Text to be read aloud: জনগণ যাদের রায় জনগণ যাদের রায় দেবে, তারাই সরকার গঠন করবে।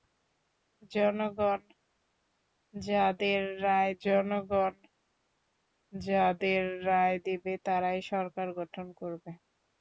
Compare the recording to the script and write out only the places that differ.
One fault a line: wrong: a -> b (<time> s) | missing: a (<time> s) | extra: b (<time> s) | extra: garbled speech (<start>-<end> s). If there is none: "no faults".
no faults